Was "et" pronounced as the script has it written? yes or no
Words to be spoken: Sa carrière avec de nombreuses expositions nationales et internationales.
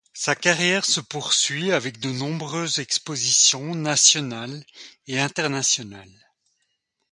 yes